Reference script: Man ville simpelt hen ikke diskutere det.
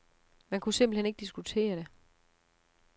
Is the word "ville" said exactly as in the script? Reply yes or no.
no